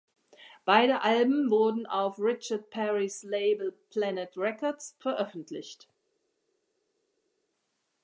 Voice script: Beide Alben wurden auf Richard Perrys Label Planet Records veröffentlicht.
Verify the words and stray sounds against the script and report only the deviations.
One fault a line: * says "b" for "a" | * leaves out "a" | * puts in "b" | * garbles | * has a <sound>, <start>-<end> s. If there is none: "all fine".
all fine